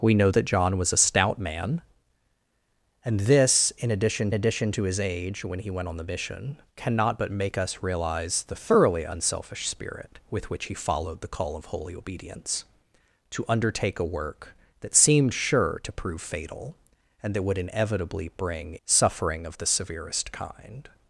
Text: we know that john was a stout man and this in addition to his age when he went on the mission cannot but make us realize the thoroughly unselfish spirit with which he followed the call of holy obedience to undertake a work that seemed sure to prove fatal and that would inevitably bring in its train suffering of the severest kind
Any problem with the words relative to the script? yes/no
yes